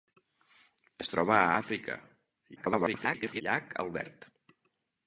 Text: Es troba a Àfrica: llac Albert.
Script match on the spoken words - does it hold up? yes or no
no